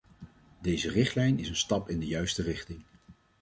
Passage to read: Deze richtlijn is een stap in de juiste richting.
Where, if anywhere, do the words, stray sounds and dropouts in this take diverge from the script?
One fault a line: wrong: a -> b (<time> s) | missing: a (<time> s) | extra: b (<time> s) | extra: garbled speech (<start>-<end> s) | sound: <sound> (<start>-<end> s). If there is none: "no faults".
no faults